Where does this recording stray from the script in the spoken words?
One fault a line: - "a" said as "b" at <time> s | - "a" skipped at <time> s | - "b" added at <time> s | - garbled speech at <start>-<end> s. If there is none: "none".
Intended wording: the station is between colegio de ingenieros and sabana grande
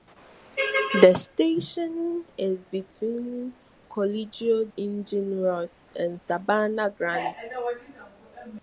- "de" skipped at 4.6 s